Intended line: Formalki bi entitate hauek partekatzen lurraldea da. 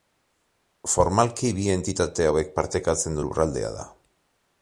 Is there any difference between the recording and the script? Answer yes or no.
no